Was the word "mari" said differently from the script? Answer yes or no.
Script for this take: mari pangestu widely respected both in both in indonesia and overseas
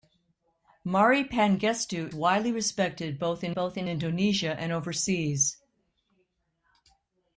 no